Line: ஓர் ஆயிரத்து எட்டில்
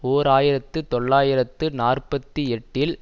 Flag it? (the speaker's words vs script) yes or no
yes